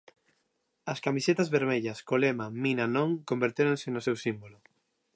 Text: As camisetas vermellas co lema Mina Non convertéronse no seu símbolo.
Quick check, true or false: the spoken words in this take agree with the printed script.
true